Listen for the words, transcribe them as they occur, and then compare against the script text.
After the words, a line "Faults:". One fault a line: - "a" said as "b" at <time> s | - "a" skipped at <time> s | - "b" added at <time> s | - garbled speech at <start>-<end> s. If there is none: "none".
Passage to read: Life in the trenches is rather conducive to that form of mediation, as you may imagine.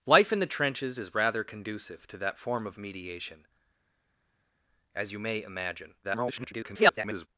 Life in the trenches is rather conducive to that form of mediation, as you may imagine. [garbled]
Faults:
- garbled speech at 6.0-7.3 s